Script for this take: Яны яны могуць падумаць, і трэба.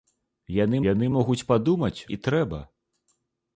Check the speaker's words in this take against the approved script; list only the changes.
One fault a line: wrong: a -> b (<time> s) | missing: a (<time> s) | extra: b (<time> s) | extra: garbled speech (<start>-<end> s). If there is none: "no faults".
no faults